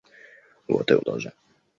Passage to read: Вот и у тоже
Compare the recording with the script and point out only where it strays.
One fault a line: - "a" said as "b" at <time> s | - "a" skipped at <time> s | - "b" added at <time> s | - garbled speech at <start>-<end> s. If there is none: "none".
none